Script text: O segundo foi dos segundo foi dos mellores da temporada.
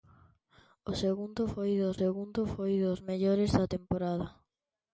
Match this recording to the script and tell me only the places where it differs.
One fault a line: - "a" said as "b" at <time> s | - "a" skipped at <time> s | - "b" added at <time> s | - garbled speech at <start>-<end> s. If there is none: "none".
none